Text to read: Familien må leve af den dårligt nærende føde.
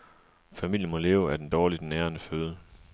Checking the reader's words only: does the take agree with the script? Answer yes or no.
yes